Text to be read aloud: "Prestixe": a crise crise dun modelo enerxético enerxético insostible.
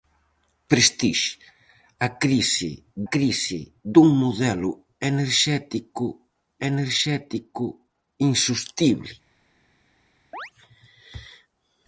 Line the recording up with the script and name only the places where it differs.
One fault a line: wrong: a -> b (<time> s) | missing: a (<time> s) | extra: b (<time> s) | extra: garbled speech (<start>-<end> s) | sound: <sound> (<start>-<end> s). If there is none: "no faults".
sound: chirp (10.3-10.5 s)